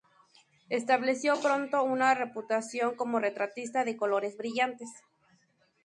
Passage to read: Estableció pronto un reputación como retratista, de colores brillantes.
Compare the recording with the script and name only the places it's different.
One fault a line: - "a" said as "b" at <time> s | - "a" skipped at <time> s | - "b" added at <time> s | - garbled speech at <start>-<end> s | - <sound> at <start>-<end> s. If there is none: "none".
- "un" said as "una" at 1.8 s